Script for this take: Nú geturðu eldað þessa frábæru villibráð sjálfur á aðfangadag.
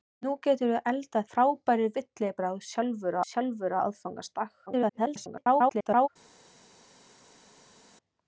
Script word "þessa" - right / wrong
wrong